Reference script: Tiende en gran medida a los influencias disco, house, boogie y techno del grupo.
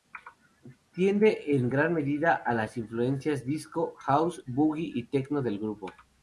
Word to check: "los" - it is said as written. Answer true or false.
false